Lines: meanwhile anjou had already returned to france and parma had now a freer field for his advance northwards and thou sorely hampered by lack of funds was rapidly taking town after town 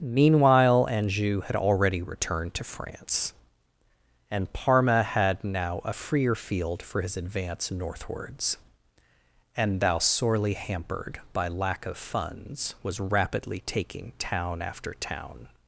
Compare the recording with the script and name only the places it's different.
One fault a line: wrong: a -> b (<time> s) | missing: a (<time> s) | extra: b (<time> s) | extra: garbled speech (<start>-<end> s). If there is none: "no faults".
no faults